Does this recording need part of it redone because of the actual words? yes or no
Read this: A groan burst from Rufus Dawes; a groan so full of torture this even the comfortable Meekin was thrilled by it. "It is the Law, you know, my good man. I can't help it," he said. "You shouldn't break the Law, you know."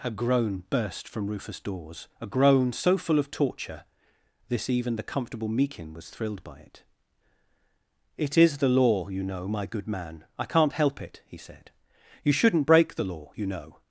no